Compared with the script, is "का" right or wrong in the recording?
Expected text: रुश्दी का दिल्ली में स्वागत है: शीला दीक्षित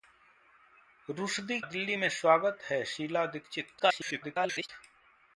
wrong